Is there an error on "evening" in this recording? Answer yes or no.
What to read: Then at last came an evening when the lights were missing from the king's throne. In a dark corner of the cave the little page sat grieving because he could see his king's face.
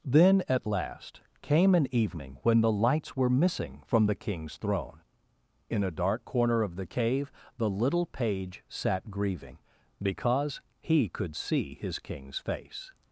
no